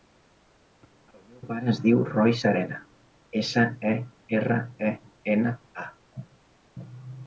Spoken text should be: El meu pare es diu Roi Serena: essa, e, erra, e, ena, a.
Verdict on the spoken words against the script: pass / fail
pass